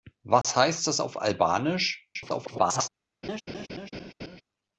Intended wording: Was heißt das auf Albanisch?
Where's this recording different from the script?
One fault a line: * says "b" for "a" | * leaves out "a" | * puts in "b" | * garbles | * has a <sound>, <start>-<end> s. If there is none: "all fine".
* has a dropout, 0.4-0.4 s
* garbles
* has a laugh, 3.2-4.4 s